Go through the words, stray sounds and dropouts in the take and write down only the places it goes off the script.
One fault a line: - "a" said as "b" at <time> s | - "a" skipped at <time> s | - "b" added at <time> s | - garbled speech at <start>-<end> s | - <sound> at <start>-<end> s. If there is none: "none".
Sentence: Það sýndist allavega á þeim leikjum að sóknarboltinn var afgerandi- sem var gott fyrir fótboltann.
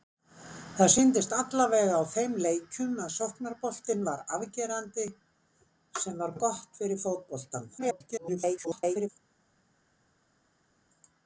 - garbled speech at 7.8-9.1 s